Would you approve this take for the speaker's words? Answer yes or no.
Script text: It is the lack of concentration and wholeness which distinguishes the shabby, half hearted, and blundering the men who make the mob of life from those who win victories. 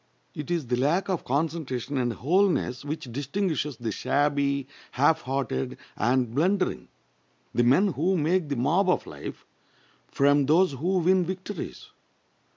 yes